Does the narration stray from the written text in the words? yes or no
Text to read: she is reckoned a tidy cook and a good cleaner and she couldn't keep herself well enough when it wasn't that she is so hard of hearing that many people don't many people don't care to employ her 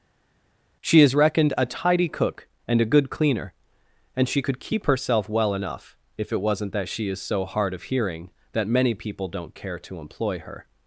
yes